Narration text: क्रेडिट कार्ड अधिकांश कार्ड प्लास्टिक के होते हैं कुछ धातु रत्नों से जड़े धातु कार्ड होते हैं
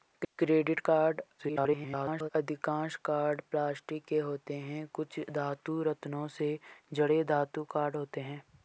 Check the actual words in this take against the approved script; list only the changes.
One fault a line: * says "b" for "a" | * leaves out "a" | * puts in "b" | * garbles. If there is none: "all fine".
* garbles